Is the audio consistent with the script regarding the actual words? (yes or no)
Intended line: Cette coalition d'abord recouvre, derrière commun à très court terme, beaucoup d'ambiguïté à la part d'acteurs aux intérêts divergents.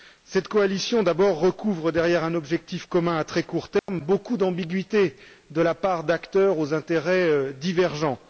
no